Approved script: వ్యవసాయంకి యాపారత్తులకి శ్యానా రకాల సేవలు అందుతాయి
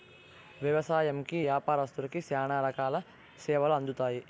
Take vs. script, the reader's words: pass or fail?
pass